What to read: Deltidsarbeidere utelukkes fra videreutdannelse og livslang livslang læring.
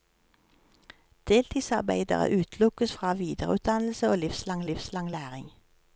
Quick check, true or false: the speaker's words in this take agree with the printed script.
true